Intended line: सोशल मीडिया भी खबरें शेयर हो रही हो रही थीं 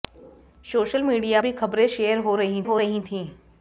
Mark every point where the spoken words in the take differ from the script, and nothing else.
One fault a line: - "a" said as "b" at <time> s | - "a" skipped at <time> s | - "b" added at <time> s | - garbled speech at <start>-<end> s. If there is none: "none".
none